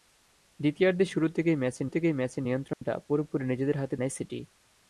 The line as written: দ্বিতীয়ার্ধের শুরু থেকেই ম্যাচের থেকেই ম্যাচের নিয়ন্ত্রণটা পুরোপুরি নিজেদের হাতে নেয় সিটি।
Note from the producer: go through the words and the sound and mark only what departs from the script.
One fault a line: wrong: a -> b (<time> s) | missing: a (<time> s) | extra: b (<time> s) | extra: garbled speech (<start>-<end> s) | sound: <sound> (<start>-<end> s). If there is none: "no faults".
sound: dropout (2.7-2.8 s)